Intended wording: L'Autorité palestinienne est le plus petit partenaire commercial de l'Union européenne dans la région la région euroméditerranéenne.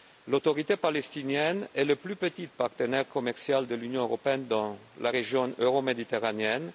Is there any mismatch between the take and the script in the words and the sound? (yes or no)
yes